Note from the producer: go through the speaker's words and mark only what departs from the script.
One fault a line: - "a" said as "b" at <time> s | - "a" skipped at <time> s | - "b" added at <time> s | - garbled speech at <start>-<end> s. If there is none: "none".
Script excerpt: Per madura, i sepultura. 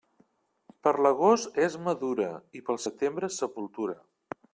- "l'agost és" added at 1.1 s
- "pel setembre" added at 2.7 s